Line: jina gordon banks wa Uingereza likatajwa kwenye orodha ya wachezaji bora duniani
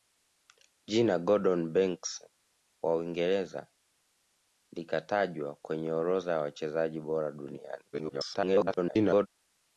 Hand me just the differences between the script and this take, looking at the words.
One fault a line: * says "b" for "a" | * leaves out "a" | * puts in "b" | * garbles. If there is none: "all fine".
* garbles